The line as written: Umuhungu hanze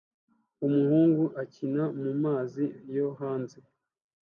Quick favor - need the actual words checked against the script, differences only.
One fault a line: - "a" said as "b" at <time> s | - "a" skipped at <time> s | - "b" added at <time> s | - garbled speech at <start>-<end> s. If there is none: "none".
- "akina mumazi yo" added at 1.4 s